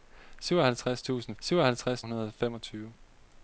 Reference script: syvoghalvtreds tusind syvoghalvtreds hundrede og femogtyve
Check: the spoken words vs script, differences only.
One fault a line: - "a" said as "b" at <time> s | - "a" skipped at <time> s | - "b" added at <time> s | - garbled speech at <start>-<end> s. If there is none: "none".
none